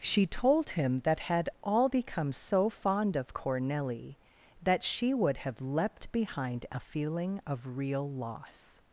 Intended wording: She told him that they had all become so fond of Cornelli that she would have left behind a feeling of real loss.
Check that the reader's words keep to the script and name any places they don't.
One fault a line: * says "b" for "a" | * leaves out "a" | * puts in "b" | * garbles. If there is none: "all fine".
* leaves out "they"
* says "leapt" for "left"